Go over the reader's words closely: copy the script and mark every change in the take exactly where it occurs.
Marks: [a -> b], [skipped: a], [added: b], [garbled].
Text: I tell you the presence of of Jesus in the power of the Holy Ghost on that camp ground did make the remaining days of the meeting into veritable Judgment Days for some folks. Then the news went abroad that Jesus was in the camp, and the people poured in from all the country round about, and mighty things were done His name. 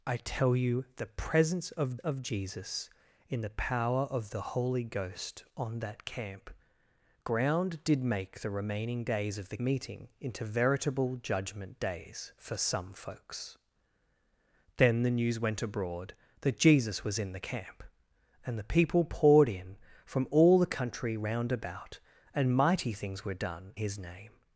I tell you the presence of of Jesus in the power of the Holy Ghost on that camp ground did make the remaining days of the meeting into veritable Judgment Days for some folks. Then the news went abroad that Jesus was in the camp, and the people poured in from all the country round about, and mighty things were done His name.